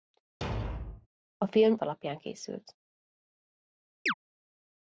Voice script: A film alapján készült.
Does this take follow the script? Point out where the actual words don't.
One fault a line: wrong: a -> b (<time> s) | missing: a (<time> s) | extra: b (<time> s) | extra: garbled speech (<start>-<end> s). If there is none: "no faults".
no faults